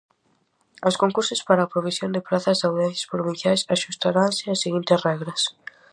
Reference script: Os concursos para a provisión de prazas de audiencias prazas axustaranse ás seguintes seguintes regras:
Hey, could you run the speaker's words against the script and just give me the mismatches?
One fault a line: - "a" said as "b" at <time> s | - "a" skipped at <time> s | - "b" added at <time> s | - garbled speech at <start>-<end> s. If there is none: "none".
- "prazas" said as "provinciais" at 3.1 s
- "seguintes" skipped at 5.0 s